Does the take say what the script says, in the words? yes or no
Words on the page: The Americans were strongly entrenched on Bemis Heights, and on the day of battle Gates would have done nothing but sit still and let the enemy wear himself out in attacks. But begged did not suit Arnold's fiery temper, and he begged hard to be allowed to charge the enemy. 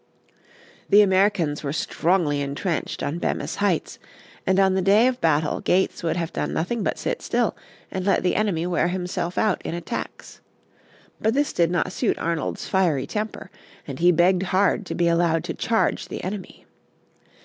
no